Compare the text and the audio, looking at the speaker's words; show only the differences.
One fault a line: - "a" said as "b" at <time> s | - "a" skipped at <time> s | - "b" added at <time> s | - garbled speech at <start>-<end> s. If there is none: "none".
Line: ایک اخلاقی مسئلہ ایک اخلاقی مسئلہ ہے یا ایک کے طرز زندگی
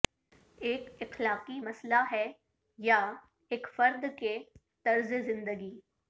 - "ایک اخلاقی مسئلہ" skipped at 2.0 s
- "فرد" added at 3.7 s